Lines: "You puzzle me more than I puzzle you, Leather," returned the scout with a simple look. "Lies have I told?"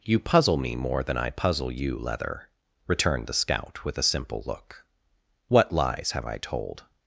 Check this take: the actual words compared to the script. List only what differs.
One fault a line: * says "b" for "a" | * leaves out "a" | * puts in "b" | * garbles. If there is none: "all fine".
* puts in "What"